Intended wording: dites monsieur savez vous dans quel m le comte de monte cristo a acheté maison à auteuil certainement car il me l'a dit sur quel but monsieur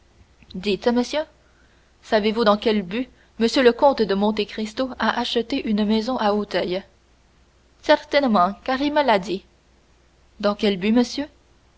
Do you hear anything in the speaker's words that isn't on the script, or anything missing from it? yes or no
yes